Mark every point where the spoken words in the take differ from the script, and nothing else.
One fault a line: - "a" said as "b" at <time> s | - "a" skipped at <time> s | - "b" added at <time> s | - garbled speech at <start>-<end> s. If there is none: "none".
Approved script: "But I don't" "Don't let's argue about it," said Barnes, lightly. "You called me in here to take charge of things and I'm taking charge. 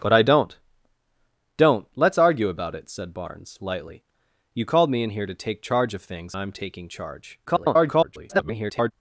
- "and" skipped at 6.3 s
- garbled speech at 7.5-8.9 s